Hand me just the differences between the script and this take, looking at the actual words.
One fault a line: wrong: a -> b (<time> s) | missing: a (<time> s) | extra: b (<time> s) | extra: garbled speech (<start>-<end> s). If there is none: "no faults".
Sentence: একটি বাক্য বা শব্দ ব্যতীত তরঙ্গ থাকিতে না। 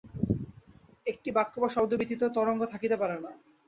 extra: পারে (3.0 s)